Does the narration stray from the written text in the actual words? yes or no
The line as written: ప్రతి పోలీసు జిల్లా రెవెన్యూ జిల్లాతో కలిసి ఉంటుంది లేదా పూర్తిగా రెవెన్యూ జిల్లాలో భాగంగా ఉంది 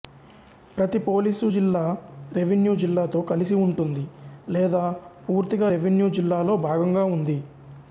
no